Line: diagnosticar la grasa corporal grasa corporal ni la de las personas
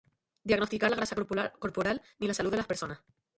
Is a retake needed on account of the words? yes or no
yes